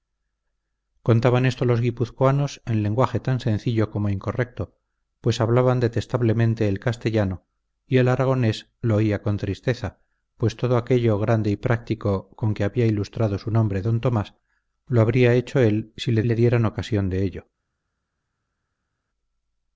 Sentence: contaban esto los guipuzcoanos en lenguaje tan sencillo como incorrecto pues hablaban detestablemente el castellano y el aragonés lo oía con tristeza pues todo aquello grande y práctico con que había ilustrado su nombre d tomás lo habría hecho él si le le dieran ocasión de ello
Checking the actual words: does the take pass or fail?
pass